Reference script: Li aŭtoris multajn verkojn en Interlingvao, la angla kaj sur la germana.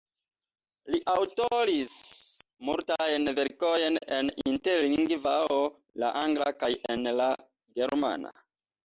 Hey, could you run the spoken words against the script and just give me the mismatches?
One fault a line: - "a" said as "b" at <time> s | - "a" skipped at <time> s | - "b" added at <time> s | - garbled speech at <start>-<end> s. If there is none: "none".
- "sur" said as "en" at 7.0 s